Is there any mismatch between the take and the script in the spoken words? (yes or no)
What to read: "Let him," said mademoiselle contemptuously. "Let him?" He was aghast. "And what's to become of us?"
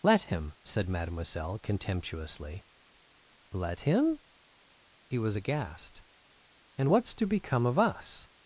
no